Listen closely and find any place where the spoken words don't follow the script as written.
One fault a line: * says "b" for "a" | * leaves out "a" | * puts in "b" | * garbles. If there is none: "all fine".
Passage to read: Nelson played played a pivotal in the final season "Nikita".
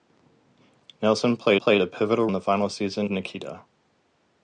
all fine